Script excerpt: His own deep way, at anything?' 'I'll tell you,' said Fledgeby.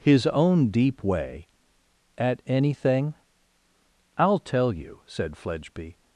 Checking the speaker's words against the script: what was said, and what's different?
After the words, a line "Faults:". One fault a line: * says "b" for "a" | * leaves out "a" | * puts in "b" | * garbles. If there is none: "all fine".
His own deep way, at anything?' 'I'll tell you,' said Fledgeby.
Faults:
all fine